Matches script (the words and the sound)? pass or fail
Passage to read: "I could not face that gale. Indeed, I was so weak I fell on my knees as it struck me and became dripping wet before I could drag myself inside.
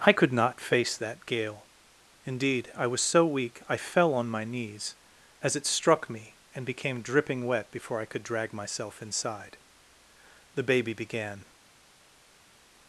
fail